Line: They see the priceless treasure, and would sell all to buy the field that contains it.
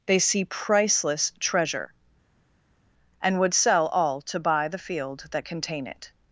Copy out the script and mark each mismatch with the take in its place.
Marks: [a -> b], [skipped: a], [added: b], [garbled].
They see [skipped: the] priceless treasure, and would sell all to buy the field that [contains -> contain] it.